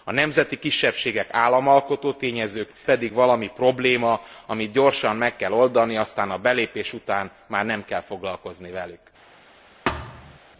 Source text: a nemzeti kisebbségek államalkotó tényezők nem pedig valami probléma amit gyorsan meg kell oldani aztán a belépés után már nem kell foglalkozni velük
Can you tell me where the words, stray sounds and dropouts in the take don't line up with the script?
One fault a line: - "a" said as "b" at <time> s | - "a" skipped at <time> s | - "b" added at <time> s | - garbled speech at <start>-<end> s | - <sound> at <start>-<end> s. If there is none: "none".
- "nem" skipped at 2.7 s
- thud at 9.9-10.4 s